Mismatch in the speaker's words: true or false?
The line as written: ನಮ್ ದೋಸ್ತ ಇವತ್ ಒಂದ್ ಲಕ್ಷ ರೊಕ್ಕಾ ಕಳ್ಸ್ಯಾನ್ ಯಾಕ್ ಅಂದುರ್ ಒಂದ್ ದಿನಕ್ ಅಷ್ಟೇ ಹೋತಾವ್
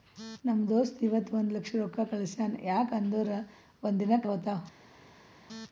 true